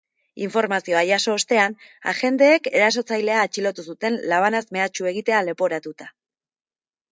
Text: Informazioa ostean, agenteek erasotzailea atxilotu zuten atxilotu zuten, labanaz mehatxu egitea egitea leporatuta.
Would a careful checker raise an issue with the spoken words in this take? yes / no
yes